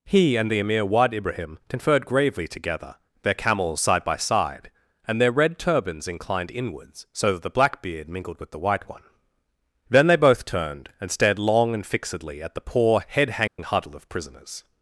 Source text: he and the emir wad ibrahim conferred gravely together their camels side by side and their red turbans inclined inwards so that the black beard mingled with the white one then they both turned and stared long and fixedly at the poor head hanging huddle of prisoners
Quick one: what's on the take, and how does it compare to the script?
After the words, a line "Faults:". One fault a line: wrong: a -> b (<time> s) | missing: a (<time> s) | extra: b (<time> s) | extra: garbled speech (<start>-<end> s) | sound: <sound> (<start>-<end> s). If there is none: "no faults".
he and the emir wad ibrahim conferred gravely together their camels side by side and their red turbans inclined inwards so that the black beard mingled with the white one then they both turned and stared long and fixedly at the poor head hanging huddle of prisoners
Faults:
sound: dropout (13.5-13.6 s)